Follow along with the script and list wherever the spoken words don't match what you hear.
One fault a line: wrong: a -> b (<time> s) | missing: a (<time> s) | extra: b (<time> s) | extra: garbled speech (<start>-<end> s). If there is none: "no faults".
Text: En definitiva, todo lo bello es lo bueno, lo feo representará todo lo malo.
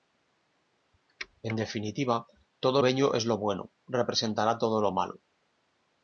missing: lo (2.8 s)
missing: lo feo (3.7 s)